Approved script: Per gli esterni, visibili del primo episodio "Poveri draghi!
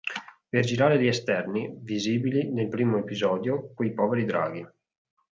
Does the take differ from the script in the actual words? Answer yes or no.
yes